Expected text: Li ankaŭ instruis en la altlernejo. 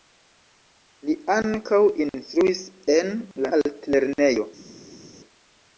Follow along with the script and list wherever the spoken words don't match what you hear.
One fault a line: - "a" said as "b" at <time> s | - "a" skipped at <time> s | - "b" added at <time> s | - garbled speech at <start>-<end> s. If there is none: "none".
none